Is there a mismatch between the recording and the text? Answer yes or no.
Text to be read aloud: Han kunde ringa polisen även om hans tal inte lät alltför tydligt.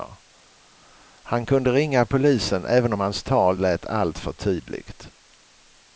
yes